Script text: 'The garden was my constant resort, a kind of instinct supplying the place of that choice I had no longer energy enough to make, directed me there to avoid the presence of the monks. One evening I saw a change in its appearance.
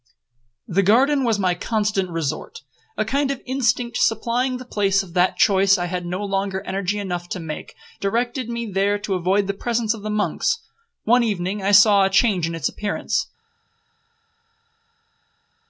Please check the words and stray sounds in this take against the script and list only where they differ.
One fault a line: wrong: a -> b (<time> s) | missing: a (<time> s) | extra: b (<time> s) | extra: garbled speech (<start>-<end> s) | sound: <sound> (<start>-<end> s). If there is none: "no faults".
no faults